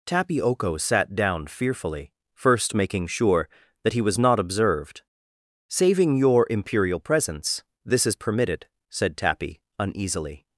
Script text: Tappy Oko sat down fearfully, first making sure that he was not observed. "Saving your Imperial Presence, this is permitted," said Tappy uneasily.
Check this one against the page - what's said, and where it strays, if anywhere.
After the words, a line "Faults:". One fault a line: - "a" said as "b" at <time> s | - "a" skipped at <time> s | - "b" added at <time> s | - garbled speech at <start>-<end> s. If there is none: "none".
Tappy Oko sat down fearfully, first making sure that he was not observed. "Saving your Imperial Presence, this is permitted," said Tappy uneasily.
Faults:
none